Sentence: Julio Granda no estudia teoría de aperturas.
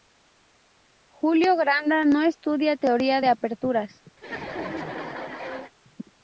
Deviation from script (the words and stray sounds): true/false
true